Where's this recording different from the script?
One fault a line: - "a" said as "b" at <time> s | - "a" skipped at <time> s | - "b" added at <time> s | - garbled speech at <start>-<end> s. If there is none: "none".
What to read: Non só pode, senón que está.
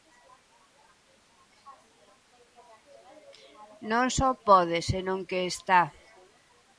none